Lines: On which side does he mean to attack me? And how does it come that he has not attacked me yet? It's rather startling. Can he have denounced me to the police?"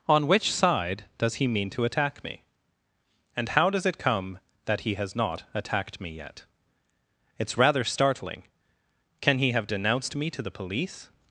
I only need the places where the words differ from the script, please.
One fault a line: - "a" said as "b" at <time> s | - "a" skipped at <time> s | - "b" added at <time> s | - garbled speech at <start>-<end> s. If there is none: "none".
none